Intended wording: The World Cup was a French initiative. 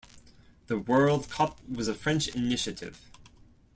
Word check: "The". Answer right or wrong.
right